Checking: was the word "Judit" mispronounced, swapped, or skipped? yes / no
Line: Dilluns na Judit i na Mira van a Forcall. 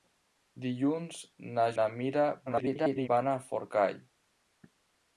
yes